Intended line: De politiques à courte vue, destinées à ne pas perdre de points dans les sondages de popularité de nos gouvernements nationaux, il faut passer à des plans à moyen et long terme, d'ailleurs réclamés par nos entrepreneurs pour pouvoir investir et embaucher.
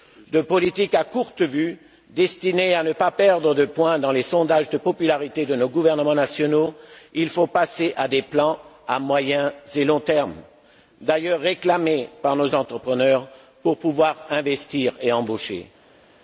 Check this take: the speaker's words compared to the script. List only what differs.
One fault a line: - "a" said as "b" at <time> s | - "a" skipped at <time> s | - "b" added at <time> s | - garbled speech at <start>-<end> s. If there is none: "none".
none